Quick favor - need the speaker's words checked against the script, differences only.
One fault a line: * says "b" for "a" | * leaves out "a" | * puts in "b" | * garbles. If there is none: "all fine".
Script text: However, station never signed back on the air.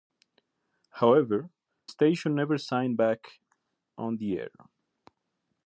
all fine